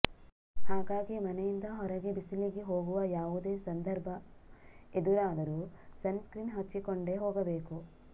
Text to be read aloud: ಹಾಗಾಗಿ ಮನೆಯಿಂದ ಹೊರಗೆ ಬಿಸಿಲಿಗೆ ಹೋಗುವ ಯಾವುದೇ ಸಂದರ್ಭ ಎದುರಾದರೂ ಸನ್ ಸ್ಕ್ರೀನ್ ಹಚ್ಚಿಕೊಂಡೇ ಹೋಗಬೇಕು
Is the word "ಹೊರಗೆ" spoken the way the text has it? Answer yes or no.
yes